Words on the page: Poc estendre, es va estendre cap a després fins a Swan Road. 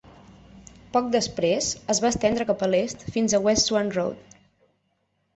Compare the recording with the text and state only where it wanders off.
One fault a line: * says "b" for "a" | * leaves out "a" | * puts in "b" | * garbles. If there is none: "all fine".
* says "després" for "estendre"
* says "l'est" for "després"
* puts in "West"